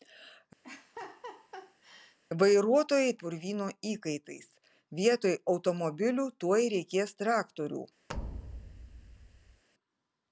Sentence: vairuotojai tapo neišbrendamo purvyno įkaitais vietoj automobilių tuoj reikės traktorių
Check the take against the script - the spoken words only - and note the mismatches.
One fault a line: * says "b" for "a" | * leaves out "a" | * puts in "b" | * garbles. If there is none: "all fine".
* leaves out "tapo neišbrendamo"